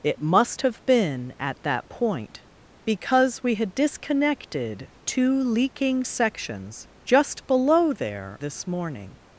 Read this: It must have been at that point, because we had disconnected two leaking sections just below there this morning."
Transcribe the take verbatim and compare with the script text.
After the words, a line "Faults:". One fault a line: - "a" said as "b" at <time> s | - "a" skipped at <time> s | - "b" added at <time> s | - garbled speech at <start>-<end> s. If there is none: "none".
It must have been at that point, because we had disconnected two leaking sections just below there this morning."
Faults:
none